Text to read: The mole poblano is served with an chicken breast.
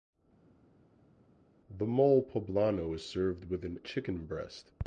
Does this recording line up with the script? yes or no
yes